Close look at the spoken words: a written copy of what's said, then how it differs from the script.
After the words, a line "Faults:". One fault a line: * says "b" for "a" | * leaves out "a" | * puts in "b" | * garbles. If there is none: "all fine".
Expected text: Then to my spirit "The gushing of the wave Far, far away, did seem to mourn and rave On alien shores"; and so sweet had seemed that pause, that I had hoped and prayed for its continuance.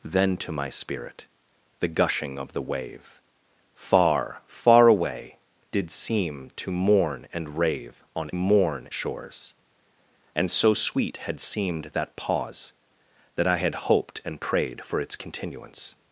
Then to my spirit "The gushing of the wave Far, far away, did seem to mourn and rave On mourn shores"; and so sweet had seemed that pause, that I had hoped and prayed for its continuance.
Faults:
* says "mourn" for "alien"